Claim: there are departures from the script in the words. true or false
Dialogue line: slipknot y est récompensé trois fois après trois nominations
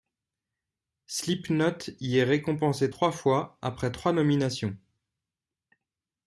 false